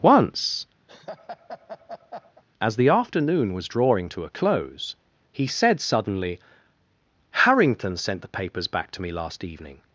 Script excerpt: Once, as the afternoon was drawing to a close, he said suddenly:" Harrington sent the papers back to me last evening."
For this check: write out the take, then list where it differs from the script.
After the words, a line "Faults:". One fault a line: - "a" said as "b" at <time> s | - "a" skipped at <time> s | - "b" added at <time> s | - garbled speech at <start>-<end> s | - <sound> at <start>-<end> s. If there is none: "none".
Once, as the afternoon was drawing to a close, he said suddenly:" Harrington sent the papers back to me last evening."
Faults:
- laugh at 0.9-2.4 s